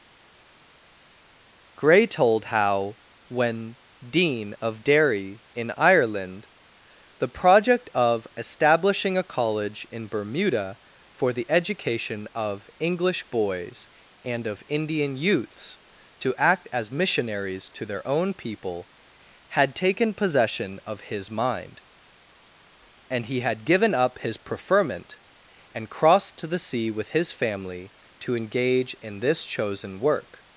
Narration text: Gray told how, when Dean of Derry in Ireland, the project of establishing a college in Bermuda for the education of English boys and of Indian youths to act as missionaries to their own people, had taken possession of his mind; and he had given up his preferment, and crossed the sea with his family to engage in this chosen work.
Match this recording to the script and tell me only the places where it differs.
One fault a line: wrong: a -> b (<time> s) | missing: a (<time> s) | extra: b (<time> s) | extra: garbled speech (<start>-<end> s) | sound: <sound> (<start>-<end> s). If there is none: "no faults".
extra: to (26.4 s)